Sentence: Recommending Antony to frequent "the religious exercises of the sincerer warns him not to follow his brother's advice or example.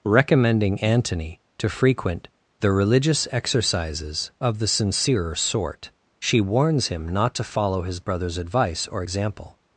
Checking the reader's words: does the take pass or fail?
fail